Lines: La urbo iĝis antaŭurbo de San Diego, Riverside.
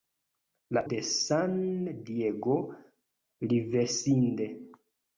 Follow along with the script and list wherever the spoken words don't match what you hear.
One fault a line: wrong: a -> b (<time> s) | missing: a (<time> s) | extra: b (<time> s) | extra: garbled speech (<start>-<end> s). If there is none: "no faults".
missing: urbo iĝis antaŭurbo (0.8 s)